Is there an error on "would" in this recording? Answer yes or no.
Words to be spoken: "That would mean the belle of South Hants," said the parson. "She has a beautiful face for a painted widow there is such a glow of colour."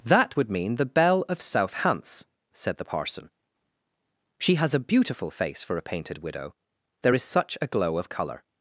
no